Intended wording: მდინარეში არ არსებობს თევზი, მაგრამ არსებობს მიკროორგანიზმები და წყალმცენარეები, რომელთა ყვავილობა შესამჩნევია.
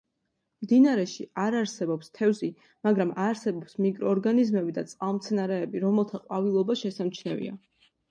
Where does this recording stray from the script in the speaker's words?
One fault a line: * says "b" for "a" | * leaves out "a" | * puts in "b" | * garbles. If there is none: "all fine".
all fine